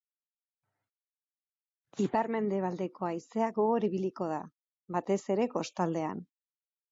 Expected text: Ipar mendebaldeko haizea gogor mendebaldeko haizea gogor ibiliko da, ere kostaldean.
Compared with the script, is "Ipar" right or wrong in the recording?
right